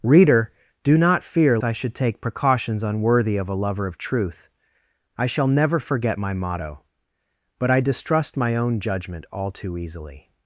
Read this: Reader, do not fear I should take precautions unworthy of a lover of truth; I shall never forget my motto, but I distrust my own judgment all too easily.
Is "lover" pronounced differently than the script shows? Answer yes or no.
no